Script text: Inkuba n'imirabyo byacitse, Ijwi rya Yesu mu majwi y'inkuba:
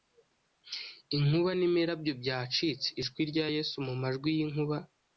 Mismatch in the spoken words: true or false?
false